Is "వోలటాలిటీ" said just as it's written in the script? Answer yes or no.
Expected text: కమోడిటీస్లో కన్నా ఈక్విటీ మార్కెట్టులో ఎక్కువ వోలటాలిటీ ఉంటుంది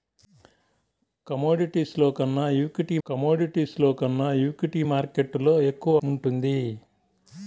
no